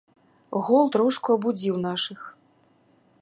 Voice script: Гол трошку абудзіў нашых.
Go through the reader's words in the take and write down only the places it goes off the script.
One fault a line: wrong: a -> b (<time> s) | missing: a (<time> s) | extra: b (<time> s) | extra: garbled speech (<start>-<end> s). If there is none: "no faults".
no faults